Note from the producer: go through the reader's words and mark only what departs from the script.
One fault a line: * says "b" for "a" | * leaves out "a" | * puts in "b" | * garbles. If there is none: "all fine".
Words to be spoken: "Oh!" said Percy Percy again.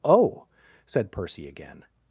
* leaves out "Percy"